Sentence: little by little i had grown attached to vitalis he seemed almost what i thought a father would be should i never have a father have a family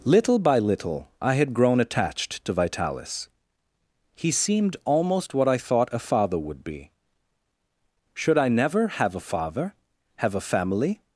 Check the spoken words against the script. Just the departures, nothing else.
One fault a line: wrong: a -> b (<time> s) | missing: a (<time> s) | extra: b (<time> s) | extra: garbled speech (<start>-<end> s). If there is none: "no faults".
no faults